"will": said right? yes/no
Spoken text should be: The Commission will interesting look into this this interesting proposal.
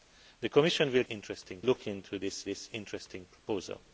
yes